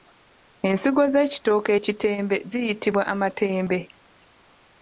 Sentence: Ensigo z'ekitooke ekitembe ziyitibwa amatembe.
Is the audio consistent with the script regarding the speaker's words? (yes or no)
yes